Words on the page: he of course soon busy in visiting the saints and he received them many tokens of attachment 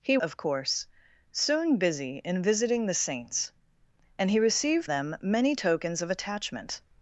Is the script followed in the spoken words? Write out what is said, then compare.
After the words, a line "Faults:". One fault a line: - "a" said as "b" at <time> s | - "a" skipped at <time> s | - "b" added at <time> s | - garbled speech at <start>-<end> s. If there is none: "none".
he of course soon busy in visiting the saints and he received them many tokens of attachment
Faults:
none